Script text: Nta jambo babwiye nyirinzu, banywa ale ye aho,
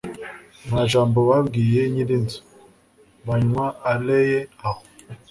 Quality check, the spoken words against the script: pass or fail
pass